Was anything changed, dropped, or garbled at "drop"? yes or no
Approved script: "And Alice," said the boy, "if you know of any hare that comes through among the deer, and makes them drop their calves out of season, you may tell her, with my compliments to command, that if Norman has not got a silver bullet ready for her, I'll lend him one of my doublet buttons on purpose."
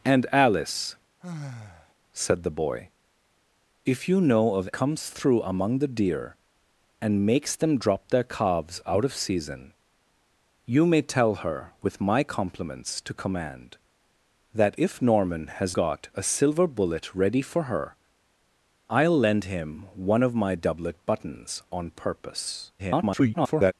no